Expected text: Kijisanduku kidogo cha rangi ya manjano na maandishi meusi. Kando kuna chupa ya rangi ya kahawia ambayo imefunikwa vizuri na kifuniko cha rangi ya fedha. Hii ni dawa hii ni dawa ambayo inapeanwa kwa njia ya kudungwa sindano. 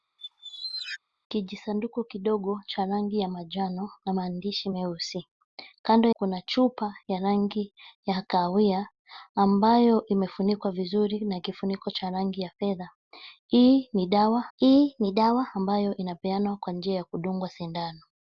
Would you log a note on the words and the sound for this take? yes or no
yes